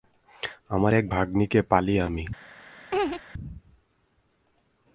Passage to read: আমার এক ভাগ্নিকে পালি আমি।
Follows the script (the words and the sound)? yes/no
no